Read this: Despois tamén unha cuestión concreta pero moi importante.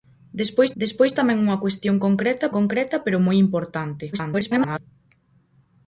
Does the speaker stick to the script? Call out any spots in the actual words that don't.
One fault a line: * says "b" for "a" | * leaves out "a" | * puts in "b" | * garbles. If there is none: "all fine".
* puts in "despois"
* puts in "concreta"
* garbles